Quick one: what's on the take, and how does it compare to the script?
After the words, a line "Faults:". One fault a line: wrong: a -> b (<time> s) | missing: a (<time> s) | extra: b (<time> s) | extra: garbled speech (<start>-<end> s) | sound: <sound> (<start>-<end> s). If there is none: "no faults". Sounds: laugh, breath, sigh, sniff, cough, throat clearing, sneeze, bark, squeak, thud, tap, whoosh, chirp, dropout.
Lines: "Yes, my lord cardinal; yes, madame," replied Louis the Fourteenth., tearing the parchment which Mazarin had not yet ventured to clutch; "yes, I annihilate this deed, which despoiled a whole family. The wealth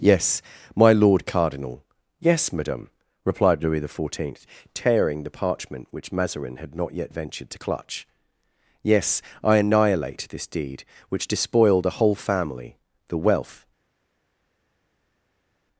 "Yes, my lord cardinal; yes, madame," replied Louis the Fourteenth., tearing the parchment which Mazarin had not yet ventured to clutch; "yes, I annihilate this deed, which despoiled a whole family. The wealth
Faults:
no faults